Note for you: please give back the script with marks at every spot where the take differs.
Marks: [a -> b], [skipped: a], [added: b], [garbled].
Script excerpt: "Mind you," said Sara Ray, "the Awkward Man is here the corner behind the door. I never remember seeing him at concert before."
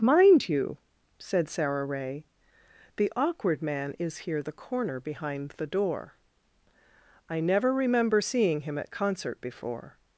"Mind you," said Sara Ray, "the Awkward Man is here the corner behind the door. I never remember seeing him at concert before."